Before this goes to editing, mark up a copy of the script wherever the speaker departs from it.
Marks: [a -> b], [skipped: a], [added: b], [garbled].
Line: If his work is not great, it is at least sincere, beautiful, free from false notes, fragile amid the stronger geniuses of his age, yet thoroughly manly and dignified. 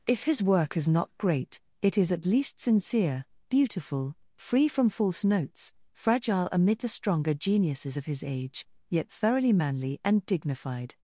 If his work is not great, it is at least sincere, beautiful, free from false notes, fragile amid the stronger geniuses of his age, yet thoroughly manly and dignified.